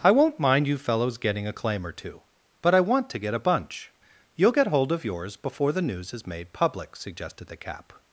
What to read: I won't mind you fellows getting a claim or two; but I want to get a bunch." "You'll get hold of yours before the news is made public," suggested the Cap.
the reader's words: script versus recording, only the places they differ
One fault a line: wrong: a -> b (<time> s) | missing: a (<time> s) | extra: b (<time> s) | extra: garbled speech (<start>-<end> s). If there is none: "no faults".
no faults